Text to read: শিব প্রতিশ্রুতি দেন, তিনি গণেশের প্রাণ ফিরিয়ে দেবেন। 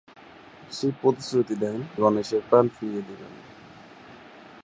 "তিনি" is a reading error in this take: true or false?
true